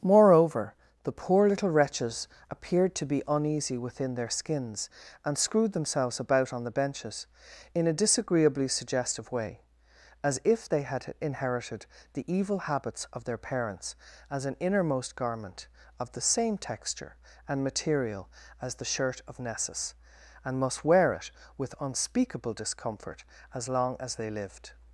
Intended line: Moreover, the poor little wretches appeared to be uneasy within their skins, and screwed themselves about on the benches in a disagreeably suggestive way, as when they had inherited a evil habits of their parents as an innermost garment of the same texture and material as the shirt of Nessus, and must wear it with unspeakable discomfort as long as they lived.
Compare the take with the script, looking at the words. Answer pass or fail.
fail